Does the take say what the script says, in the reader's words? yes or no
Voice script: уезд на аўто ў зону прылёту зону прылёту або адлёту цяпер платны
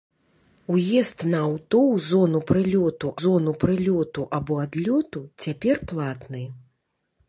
yes